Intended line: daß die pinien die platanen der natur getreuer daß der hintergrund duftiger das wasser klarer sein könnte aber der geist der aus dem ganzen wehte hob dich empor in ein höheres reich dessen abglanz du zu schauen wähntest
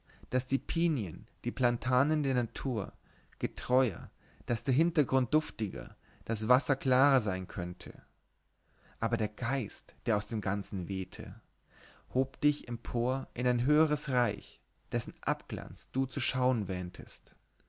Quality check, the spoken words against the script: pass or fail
pass